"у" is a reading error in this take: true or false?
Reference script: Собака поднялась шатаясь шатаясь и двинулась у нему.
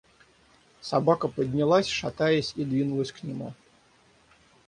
true